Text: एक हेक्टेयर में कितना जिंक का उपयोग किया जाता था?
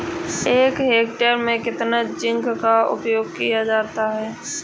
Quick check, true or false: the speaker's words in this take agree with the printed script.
false